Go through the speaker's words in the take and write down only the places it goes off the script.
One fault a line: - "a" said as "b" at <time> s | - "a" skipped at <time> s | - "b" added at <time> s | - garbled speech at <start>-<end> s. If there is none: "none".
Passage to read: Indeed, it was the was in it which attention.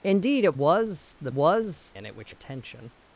none